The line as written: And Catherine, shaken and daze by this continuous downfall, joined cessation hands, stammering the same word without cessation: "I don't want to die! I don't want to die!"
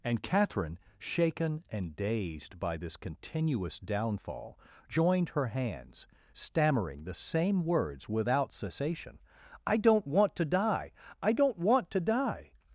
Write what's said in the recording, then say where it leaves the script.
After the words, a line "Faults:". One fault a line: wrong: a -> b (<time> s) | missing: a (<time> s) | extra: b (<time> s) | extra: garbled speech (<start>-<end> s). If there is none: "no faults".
And Catherine, shaken and dazed by this continuous downfall, joined her hands, stammering the same words without cessation: "I don't want to die! I don't want to die!"
Faults:
wrong: daze -> dazed (1.9 s)
wrong: cessation -> her (5.3 s)
wrong: word -> words (7.7 s)